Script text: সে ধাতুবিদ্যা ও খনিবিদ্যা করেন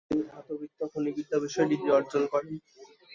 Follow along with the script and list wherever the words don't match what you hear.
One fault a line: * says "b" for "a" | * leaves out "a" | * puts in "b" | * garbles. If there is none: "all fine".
* says "তিনি" for "সে"
* puts in "বিষয়ে ডিগ্রি অর্জন"